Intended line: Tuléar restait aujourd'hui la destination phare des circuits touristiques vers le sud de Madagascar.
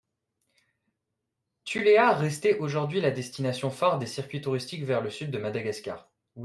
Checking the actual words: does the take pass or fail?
pass